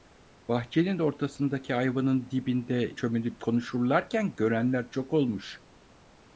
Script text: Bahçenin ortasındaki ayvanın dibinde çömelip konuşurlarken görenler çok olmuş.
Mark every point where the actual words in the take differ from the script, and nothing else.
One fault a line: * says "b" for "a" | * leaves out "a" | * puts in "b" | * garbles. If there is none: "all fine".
all fine